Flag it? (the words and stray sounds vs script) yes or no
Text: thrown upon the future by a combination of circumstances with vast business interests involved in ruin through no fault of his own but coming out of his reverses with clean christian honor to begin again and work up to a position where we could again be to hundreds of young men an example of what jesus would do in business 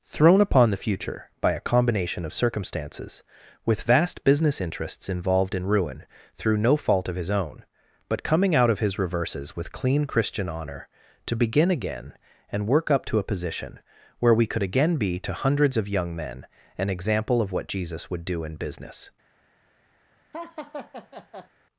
yes